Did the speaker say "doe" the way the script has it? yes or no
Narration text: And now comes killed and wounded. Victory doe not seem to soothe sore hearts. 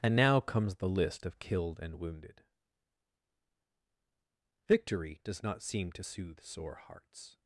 no